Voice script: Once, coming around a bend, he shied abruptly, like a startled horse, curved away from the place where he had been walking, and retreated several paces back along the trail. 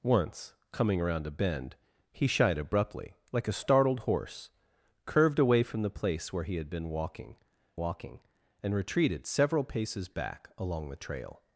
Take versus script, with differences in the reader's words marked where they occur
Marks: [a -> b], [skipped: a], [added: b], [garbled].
Once, coming around a bend, he shied abruptly, like a startled horse, curved away from the place where he had been walking, [added: walking] and retreated several paces back along the trail.